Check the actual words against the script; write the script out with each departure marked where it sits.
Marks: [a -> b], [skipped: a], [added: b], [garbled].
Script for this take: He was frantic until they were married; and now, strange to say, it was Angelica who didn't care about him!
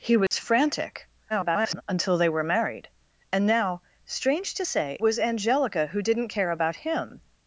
He was frantic [garbled] until they were married; and now, strange to say, [skipped: it] was Angelica who didn't care about him!